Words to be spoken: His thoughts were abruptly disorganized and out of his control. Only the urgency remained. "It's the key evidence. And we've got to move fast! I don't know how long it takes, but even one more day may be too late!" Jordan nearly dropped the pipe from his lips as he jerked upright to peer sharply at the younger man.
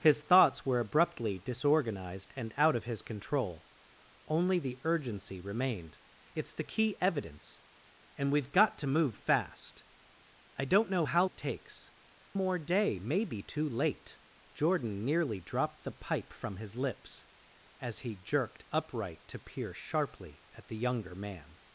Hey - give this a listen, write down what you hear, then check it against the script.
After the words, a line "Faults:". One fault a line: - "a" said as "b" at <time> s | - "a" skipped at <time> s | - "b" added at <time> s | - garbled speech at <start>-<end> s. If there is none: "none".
His thoughts were abruptly disorganized and out of his control. Only the urgency remained. "It's the key evidence. And we've got to move fast! I don't know how it takes, more day may be too late!" Jordan nearly dropped the pipe from his lips as he jerked upright to peer sharply at the younger man.
Faults:
- "long" skipped at 11.2 s
- "but even one" skipped at 11.9 s